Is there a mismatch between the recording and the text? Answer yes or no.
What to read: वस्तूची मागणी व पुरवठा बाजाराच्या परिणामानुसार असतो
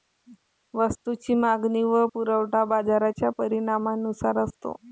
no